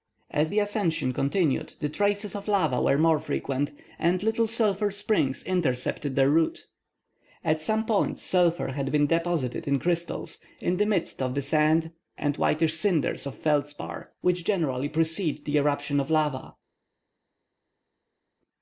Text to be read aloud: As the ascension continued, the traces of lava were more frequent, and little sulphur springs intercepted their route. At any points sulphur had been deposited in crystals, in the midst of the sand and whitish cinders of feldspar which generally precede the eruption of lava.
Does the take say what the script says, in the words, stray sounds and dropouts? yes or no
no